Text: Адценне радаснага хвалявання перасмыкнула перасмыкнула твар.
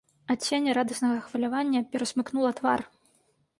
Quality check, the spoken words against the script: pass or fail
fail